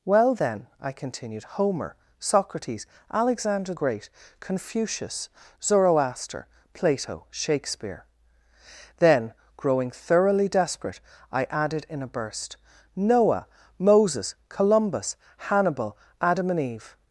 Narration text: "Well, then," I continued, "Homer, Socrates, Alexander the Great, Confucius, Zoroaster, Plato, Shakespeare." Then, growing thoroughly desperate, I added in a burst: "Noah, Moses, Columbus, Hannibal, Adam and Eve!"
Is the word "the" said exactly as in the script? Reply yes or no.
no